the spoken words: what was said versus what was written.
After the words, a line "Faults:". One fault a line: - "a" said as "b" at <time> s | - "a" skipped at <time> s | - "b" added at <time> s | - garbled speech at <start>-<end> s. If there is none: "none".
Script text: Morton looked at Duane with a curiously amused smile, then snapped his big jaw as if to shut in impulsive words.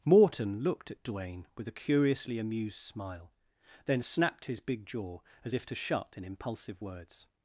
Morton looked at Duane with a curiously amused smile, then snapped his big jaw as if to shut in impulsive words.
Faults:
none